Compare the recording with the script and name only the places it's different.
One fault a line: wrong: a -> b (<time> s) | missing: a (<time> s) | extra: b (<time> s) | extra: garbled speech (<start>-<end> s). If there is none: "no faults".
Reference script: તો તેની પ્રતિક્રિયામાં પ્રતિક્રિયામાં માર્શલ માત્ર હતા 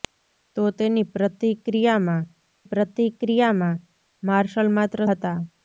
no faults